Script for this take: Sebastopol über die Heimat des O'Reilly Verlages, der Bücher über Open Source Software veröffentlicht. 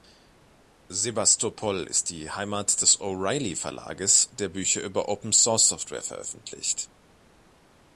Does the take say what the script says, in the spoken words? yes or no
no